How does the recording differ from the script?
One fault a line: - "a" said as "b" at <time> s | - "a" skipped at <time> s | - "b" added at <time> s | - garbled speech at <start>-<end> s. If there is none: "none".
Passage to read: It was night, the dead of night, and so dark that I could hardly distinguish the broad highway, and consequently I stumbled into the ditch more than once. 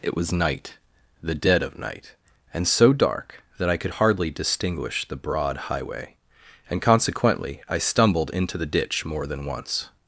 none